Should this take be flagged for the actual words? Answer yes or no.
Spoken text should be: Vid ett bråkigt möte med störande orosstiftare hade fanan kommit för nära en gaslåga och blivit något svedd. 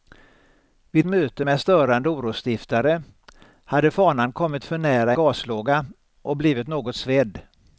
yes